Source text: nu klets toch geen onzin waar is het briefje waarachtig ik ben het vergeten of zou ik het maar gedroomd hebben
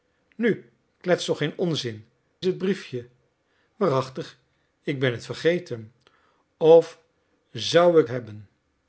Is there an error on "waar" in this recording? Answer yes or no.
yes